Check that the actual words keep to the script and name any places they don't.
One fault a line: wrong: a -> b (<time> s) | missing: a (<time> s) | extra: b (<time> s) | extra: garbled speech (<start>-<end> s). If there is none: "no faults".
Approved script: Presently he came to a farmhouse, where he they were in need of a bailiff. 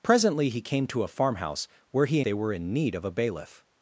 no faults